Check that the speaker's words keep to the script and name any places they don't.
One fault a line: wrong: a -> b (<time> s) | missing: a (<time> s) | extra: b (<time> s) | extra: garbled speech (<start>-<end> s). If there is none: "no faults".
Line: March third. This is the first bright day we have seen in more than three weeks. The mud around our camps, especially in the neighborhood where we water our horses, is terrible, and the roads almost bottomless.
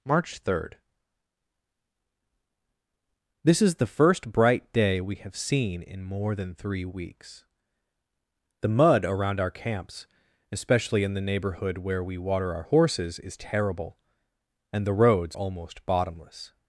no faults